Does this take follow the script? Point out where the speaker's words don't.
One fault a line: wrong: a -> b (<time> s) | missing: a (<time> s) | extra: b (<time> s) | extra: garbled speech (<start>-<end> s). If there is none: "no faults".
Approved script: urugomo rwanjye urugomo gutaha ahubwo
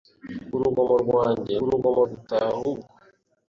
no faults